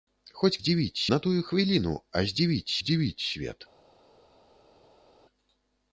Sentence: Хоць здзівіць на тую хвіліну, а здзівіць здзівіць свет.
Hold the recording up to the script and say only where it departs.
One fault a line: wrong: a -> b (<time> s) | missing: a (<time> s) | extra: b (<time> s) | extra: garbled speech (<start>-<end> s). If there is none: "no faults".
no faults